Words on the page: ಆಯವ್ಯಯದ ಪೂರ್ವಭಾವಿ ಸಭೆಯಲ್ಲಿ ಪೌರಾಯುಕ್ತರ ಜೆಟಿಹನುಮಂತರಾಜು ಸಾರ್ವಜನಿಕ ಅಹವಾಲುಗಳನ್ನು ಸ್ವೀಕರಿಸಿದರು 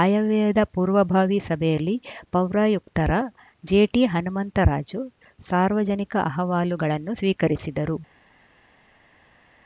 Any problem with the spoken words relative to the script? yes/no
no